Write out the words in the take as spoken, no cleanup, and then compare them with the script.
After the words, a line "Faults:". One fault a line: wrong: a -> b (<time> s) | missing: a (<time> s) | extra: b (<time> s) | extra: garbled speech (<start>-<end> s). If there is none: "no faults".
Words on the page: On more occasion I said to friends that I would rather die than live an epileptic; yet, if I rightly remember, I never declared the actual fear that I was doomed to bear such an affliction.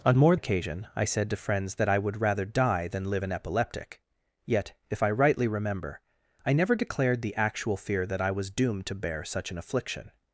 On more occasion I said to friends that I would rather die than live an epileptic; yet, if I rightly remember, I never declared the actual fear that I was doomed to bear such an affliction.
Faults:
no faults